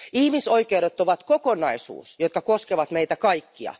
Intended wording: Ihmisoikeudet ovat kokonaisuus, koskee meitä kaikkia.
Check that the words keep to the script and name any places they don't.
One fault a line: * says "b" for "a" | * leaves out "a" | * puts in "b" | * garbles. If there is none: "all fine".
* puts in "joka"